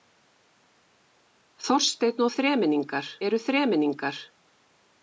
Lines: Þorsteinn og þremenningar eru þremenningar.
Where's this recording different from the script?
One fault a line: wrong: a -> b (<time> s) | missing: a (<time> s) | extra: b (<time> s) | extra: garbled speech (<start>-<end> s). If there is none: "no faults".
no faults